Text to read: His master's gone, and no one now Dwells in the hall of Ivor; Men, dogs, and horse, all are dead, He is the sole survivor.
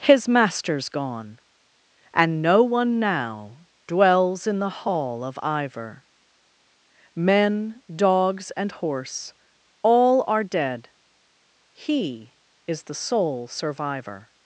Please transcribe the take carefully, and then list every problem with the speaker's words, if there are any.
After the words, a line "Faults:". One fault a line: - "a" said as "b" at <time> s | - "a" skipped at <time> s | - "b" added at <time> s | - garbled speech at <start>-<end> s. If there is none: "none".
His master's gone, and no one now Dwells in the hall of Ivor; Men, dogs, and horse, all are dead, He is the sole survivor.
Faults:
none